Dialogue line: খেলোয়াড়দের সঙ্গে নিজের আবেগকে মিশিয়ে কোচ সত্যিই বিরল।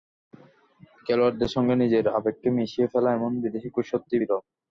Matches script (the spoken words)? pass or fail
fail